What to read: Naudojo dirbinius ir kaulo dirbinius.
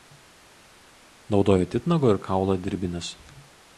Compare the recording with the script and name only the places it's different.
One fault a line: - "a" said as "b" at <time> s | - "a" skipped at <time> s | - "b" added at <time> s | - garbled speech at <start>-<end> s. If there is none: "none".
- "dirbinius" said as "titnago" at 1.8 s